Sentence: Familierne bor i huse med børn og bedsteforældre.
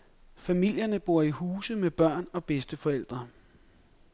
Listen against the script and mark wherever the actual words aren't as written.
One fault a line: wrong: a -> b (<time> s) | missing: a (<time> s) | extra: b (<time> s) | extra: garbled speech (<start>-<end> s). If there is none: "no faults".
no faults